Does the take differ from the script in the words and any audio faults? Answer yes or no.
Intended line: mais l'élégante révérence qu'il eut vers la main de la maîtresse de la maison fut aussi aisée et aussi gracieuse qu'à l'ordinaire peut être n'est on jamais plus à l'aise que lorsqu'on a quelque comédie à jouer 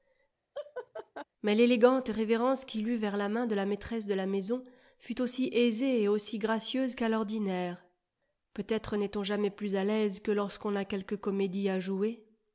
yes